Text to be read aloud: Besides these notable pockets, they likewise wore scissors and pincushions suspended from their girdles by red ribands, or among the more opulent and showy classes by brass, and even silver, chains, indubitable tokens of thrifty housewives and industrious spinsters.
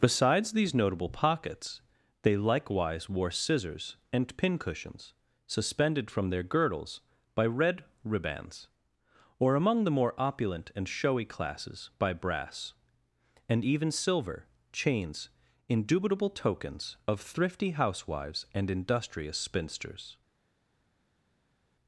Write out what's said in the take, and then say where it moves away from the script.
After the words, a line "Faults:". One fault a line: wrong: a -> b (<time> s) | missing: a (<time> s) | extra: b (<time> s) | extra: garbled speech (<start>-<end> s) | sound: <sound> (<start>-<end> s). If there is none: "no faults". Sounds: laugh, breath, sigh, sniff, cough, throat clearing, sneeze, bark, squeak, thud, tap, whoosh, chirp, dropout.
Besides these notable pockets, they likewise wore scissors and pincushions suspended from their girdles by red ribands, or among the more opulent and showy classes by brass, and even silver, chains, indubitable tokens of thrifty housewives and industrious spinsters.
Faults:
no faults